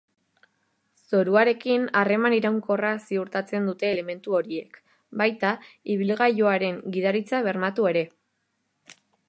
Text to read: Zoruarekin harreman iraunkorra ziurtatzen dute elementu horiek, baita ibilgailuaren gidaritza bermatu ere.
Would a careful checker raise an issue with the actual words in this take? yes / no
no